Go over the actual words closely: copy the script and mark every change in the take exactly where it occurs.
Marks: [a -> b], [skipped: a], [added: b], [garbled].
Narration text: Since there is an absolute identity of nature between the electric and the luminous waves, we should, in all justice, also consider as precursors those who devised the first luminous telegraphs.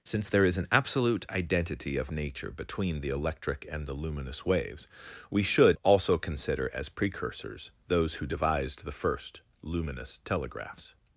Since there is an absolute identity of nature between the electric and the luminous waves, we should, [skipped: in all justice,] also consider as precursors those who devised the first luminous telegraphs.